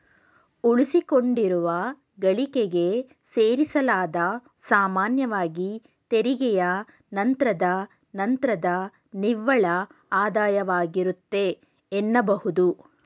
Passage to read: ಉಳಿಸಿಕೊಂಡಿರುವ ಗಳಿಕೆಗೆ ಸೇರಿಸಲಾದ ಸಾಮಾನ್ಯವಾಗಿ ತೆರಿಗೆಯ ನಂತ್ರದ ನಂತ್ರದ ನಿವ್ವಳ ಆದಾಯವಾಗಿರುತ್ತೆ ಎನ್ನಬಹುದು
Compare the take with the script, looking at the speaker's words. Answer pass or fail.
pass